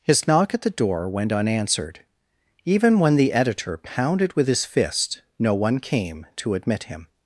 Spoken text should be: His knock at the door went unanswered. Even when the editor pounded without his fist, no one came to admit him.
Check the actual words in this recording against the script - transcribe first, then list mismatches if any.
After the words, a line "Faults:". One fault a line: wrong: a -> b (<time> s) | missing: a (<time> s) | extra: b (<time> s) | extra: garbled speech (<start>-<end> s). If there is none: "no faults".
His knock at the door went unanswered. Even when the editor pounded with his fist, no one came to admit him.
Faults:
wrong: without -> with (4.3 s)